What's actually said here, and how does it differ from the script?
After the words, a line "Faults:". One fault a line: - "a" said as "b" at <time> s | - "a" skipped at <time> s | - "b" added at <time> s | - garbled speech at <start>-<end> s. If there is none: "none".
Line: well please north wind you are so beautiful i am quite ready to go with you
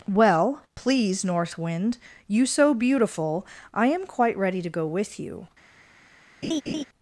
well please north wind you so beautiful i am quite ready to go with you
Faults:
- "are" skipped at 2.5 s